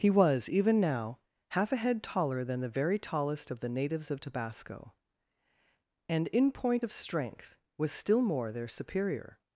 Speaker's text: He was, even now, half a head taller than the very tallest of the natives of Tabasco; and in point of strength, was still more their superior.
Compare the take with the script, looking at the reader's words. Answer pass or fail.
pass